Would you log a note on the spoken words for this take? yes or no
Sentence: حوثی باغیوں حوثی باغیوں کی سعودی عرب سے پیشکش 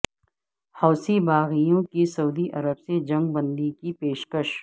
yes